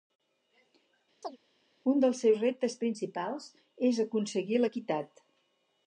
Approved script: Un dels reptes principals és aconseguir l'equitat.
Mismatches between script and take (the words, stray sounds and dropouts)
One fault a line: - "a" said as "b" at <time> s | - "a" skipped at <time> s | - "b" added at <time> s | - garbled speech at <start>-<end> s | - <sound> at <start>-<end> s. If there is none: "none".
- chirp at 1.2-1.4 s
- "seus" added at 2.2 s